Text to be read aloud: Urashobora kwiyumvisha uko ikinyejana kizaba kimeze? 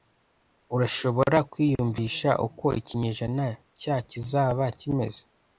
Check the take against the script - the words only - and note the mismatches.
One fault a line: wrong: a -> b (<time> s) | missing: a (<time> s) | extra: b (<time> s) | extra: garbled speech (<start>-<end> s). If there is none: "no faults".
extra: cya (3.8 s)